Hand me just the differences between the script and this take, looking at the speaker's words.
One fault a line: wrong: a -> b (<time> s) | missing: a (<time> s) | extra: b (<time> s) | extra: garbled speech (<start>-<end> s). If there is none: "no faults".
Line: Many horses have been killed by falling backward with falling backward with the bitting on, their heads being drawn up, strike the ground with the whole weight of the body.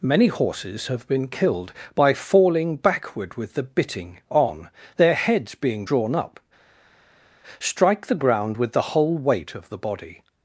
missing: falling backward with (3.5 s)